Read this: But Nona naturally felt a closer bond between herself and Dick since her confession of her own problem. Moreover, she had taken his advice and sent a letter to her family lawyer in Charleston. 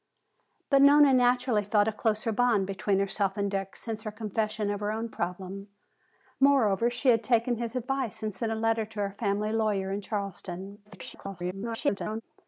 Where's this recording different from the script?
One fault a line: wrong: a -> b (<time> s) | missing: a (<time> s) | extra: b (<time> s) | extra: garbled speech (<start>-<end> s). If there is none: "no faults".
extra: garbled speech (10.8-12.2 s)